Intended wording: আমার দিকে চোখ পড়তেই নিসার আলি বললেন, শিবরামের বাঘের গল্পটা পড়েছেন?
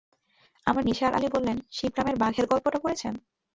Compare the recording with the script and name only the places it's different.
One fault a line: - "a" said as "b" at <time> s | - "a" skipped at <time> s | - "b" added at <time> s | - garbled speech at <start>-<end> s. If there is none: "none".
- "দিকে চোখ পড়তেই" skipped at 0.8 s